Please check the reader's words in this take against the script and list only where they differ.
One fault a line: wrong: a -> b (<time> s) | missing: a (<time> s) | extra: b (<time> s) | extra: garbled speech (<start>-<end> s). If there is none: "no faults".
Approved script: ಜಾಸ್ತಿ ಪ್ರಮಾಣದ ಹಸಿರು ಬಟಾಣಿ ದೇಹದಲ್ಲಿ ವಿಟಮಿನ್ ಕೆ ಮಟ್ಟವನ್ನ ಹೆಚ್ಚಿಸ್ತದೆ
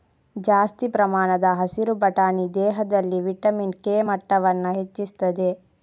no faults